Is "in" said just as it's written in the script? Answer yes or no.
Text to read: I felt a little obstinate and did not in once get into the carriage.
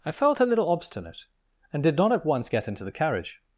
no